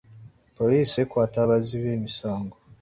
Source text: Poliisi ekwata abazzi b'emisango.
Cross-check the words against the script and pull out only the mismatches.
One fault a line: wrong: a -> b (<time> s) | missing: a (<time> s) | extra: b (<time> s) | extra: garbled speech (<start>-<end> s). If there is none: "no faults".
no faults